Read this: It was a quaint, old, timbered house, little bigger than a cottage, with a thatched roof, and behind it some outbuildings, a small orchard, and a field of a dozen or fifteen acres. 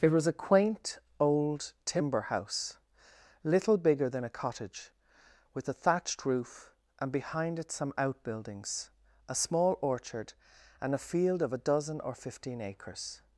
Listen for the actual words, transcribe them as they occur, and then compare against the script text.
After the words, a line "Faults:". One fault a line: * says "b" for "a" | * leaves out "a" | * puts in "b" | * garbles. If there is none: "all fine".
It was a quaint, old, timber house, little bigger than a cottage, with a thatched roof, and behind it some outbuildings, a small orchard, and a field of a dozen or fifteen acres.
Faults:
* says "timber" for "timbered"